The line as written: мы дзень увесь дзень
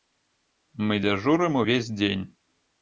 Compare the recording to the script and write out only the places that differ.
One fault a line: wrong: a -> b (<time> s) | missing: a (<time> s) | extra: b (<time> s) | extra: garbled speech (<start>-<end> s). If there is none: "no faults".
wrong: дзень -> дзяжурым (1.0 s)